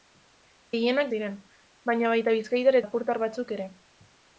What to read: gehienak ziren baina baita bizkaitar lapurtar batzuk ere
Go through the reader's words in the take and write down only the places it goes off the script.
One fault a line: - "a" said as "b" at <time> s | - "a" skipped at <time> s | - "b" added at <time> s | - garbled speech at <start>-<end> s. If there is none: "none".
none